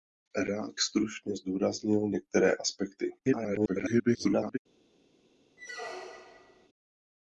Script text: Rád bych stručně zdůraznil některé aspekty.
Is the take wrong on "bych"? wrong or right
wrong